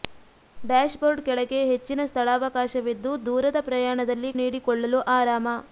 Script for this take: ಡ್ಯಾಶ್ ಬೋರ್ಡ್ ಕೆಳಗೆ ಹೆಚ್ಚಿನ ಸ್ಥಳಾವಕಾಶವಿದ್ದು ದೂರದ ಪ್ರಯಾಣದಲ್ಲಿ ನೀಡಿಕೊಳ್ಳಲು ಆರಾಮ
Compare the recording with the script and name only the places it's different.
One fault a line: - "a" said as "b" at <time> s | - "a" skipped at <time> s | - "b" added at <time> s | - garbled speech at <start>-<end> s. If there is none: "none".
none